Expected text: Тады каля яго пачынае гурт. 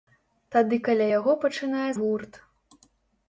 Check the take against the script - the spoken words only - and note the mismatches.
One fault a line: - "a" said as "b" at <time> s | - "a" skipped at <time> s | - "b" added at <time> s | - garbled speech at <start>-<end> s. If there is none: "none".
none